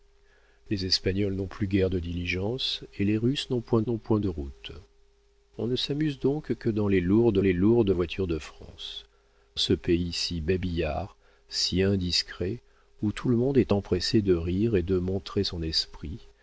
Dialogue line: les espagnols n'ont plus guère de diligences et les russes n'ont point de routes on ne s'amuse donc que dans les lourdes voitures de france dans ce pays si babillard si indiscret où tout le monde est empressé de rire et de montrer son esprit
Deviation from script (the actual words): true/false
true